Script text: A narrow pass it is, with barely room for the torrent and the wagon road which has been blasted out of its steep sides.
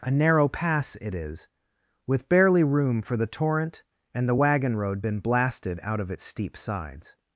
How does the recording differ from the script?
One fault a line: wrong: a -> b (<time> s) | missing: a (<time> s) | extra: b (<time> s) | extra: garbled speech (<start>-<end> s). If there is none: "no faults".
missing: which has (5.0 s)